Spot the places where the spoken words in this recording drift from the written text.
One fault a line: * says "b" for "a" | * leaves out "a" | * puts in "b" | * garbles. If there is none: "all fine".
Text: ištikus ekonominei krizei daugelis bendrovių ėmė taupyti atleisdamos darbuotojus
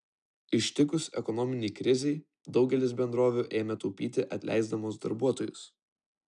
all fine